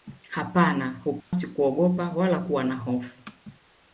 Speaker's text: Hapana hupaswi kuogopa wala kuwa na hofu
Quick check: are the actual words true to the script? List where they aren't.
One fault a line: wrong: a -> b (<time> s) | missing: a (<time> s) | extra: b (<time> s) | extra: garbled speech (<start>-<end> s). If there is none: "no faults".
no faults